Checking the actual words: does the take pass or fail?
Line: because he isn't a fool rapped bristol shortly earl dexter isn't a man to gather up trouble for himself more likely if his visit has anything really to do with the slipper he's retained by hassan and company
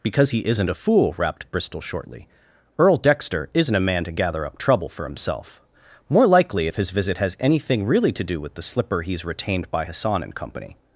pass